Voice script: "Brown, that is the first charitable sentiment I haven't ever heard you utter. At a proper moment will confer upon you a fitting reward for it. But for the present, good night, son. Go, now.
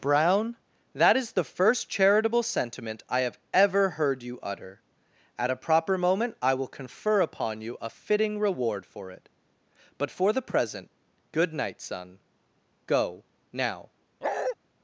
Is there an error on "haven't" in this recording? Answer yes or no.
yes